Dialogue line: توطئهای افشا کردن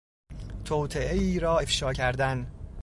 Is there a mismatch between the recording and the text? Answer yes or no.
yes